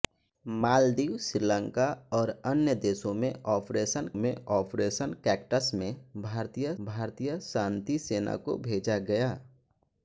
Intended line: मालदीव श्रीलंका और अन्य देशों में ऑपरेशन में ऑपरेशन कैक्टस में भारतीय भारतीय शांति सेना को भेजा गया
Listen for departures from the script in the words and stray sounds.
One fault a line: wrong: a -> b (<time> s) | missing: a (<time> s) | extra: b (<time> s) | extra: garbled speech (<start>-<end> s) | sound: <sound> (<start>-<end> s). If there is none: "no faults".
no faults